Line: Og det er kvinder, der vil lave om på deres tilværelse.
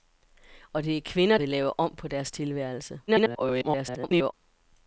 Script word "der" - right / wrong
wrong